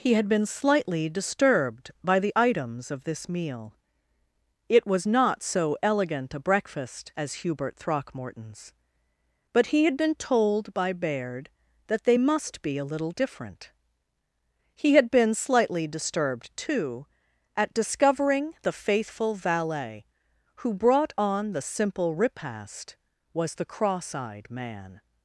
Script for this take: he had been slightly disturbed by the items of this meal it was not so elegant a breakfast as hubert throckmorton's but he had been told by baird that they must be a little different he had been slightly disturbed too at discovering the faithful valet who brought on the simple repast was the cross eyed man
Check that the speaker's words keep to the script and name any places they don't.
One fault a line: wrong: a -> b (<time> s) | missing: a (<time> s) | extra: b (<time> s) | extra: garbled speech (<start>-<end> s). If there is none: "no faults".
no faults